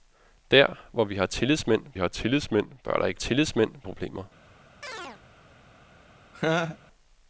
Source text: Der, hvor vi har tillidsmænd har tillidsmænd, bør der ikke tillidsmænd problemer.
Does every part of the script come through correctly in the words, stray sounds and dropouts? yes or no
no